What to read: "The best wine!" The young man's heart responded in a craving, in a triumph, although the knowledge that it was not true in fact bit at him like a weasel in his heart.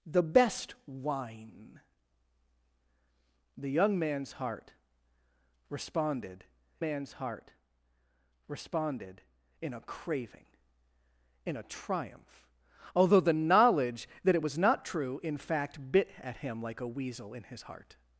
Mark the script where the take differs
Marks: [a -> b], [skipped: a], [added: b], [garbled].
"The best wine!" The young man's heart responded [added: man's heart responded] in a craving, in a triumph, although the knowledge that it was not true in fact bit at him like a weasel in his heart.